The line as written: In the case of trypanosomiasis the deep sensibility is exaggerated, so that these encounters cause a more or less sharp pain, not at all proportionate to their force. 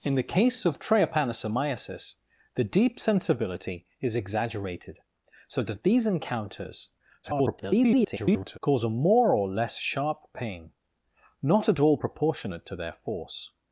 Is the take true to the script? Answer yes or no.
no